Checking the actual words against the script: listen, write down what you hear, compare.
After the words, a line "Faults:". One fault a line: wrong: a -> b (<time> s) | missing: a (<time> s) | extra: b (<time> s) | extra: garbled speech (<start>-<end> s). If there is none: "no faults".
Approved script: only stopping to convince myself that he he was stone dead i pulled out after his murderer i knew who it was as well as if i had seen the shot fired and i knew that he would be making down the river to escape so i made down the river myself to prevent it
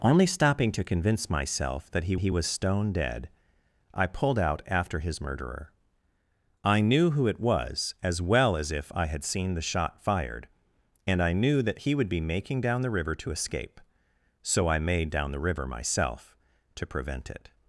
only stopping to convince myself that he he was stone dead i pulled out after his murderer i knew who it was as well as if i had seen the shot fired and i knew that he would be making down the river to escape so i made down the river myself to prevent it
Faults:
no faults